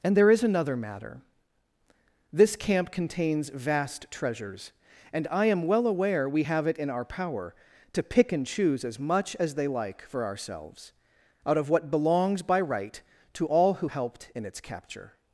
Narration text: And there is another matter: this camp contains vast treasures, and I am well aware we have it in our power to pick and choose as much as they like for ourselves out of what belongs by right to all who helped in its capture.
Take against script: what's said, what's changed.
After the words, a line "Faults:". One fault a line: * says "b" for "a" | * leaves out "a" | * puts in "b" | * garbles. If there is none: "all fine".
And there is another matter: this camp contains vast treasures, and I am well aware we have it in our power to pick and choose as much as they like for ourselves out of what belongs by right to all who helped in its capture.
Faults:
all fine